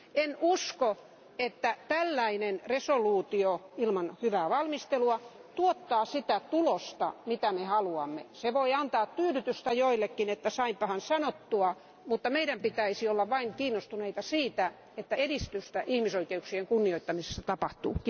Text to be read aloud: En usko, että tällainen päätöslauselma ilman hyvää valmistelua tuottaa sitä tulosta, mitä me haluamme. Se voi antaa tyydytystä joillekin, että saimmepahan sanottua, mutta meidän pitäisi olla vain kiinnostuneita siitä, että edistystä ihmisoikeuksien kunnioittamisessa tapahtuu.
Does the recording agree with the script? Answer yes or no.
yes